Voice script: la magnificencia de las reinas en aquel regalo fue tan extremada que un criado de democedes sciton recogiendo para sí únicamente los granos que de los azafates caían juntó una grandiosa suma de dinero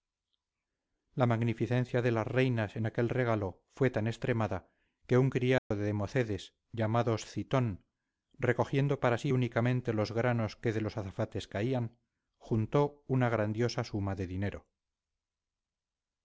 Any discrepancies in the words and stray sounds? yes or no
yes